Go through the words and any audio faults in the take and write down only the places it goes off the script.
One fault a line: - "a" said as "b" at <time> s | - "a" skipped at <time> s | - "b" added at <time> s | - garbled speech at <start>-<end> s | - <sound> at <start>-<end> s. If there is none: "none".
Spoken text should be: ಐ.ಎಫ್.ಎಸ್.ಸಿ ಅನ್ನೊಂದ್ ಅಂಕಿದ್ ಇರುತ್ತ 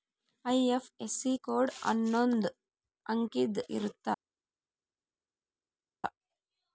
- "ಕೋಡ್" added at 1.4 s